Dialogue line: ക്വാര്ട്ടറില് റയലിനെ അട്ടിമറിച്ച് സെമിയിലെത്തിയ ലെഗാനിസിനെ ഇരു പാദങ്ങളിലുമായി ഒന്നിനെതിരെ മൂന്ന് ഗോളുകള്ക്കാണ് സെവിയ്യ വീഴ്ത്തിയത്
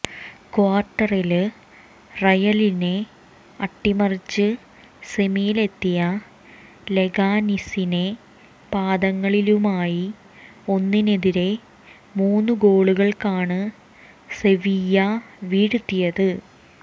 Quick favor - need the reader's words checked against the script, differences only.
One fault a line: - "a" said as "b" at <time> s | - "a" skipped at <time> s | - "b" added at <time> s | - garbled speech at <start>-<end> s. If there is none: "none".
- "ഇരു" skipped at 8.0 s